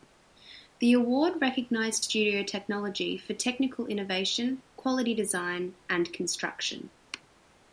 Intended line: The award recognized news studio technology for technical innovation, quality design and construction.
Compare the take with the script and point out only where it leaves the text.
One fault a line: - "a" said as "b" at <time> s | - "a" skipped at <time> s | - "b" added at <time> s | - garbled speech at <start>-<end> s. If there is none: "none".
- "news" skipped at 2.0 s